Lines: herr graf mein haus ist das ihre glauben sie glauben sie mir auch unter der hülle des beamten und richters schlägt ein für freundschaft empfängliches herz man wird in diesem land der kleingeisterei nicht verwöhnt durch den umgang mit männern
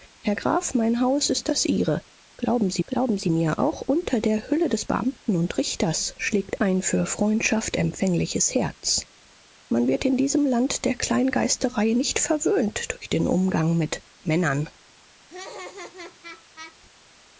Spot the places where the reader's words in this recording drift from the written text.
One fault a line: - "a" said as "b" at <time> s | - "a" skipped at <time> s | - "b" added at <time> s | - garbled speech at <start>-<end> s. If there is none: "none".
none